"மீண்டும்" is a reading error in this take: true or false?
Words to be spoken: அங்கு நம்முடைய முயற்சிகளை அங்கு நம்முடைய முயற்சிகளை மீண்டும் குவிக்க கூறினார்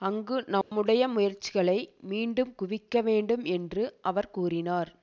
true